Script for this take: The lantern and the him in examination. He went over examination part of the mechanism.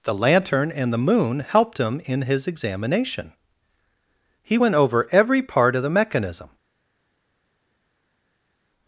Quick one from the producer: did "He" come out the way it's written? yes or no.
yes